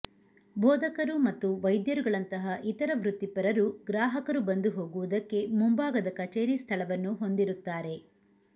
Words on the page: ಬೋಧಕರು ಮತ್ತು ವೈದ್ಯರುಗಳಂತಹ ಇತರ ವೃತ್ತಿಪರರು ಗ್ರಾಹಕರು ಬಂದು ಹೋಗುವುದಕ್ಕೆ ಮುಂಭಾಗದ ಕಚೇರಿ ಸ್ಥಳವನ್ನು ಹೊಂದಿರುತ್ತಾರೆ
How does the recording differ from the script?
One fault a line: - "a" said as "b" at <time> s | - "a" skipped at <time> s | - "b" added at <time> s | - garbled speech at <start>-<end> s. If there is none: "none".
none